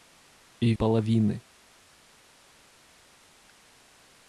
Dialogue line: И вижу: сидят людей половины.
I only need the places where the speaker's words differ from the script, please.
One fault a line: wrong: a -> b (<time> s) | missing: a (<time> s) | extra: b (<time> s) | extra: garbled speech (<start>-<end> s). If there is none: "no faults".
missing: вижу сидят людей (0.7 s)